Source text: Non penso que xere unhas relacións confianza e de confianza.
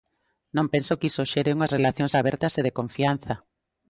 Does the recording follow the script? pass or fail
fail